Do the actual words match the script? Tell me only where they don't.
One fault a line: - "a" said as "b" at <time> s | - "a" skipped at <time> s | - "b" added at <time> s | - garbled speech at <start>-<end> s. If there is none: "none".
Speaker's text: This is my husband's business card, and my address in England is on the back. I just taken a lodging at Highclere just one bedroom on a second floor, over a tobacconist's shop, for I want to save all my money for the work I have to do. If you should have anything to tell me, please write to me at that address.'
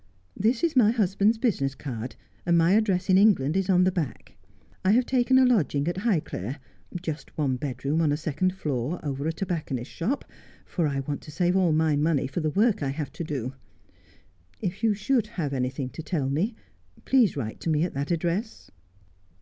- "just" said as "have" at 4.9 s